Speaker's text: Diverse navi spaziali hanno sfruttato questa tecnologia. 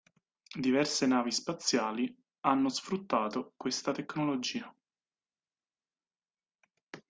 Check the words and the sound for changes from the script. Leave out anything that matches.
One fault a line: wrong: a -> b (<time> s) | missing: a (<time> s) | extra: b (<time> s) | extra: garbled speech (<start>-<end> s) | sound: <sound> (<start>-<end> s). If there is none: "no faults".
no faults